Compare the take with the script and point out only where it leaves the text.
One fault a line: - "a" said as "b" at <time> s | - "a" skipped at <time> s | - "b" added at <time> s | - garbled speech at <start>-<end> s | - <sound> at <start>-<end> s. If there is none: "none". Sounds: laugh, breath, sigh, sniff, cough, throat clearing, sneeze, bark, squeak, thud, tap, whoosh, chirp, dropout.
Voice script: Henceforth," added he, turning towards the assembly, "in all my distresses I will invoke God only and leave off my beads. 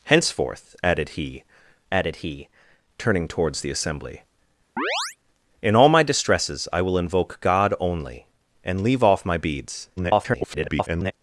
- "added he" added at 1.9 s
- chirp at 4.8-5.2 s
- garbled speech at 10.0-11.1 s